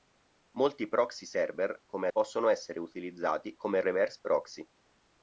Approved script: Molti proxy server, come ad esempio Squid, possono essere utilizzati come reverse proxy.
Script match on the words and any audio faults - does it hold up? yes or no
no